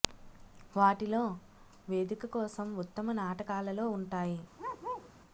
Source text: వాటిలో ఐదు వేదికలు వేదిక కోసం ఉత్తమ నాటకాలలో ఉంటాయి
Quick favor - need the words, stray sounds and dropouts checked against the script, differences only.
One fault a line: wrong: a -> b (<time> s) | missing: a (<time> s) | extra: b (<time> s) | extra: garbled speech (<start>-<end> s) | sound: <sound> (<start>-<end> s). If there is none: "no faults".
missing: ఐదు వేదికలు (1.2 s)
sound: bark (4.6-5.1 s)